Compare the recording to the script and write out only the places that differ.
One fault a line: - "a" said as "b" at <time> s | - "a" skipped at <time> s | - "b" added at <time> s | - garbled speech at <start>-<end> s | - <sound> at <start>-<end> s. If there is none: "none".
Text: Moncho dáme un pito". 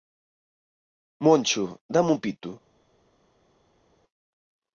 none